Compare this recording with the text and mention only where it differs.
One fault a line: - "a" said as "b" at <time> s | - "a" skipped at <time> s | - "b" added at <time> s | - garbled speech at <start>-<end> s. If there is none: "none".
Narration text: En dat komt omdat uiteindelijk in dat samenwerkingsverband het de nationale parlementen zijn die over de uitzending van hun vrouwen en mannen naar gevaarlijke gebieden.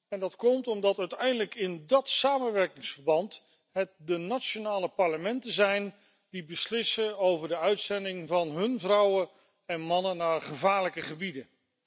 - "beslissen" added at 6.5 s